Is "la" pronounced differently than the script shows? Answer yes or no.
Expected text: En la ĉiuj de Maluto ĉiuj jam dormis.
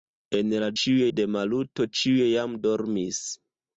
no